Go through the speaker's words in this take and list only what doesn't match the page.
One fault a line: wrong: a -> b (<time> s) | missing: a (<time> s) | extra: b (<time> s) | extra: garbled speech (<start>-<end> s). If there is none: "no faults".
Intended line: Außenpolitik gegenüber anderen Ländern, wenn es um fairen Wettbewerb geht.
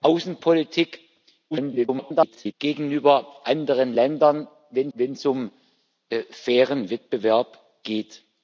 extra: garbled speech (1.5-2.5 s)
extra: wenn (4.9 s)